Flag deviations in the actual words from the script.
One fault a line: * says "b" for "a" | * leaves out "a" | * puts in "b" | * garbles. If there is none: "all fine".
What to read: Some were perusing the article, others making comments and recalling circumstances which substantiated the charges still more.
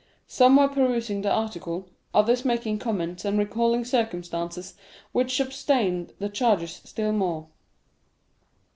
all fine